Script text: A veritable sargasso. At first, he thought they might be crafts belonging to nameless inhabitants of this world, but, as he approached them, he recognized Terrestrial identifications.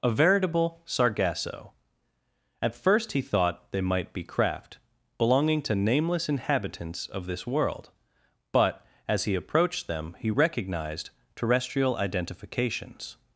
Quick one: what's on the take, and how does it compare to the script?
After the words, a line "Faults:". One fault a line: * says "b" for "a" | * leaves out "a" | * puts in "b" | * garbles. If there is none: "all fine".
A veritable sargasso. At first, he thought they might be craft belonging to nameless inhabitants of this world, but, as he approached them, he recognized Terrestrial identifications.
Faults:
* says "craft" for "crafts"